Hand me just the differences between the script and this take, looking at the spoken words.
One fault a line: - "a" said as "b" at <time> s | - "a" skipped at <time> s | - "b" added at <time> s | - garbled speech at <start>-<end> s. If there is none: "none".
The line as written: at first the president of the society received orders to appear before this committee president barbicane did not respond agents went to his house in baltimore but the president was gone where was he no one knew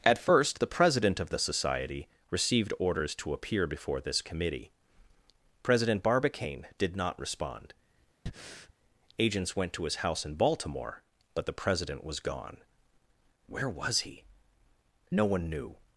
none